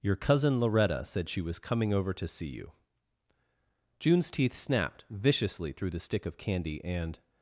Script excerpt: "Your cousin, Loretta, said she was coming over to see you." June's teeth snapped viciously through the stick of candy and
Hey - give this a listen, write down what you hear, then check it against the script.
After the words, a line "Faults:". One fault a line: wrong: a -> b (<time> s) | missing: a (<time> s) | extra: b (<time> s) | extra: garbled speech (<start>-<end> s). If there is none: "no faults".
"Your cousin, Loretta, said she was coming over to see you." June's teeth snapped viciously through the stick of candy and
Faults:
no faults